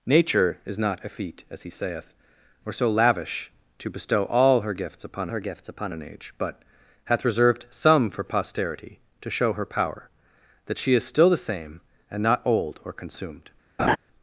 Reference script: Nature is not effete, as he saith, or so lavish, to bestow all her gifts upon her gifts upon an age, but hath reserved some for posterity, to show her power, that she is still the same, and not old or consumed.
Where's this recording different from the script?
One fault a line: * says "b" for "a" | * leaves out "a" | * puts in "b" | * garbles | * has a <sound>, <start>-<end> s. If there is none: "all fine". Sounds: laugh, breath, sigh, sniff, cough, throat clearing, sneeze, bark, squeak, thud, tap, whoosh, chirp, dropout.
* has a laugh, 13.8-14.0 s